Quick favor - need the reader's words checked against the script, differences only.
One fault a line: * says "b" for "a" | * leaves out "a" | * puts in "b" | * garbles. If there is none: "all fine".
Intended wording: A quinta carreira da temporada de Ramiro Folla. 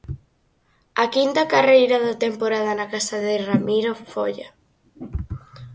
* puts in "na casa"